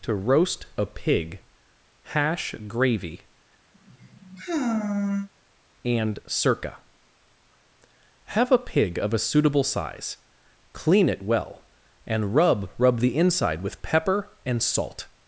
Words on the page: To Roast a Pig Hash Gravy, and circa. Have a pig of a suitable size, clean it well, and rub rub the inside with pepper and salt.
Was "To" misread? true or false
false